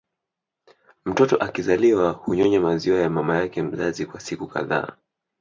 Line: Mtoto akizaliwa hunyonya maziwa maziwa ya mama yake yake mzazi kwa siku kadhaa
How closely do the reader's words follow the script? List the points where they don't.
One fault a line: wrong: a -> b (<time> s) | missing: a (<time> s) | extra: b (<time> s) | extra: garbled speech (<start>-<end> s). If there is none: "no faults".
missing: maziwa (3.0 s)
missing: yake (3.6 s)